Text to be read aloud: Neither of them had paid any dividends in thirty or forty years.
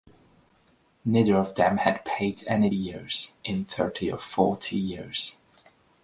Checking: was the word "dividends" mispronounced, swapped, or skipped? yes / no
yes